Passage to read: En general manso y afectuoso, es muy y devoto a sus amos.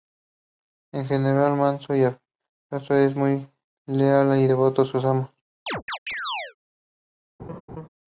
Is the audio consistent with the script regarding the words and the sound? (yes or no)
no